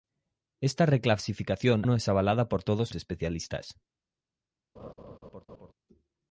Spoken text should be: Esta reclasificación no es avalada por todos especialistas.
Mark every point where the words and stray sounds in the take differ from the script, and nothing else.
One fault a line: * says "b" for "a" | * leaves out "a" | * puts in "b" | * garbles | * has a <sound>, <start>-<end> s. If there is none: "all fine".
* has a laugh, 4.8-5.7 s